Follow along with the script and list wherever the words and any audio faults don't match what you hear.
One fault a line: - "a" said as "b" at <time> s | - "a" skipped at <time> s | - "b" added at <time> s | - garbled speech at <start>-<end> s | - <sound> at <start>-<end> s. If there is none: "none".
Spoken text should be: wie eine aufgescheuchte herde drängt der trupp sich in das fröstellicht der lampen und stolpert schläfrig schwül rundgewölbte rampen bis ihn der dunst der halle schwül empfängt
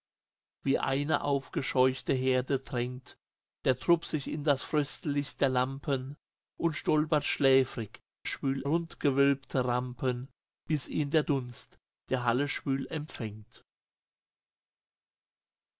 none